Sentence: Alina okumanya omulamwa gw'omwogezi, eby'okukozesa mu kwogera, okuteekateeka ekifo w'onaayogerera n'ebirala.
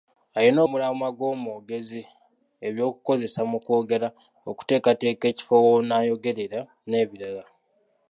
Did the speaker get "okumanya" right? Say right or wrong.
wrong